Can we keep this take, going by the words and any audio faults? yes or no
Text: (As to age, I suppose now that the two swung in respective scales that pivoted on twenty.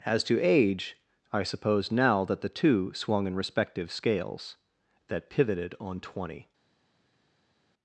yes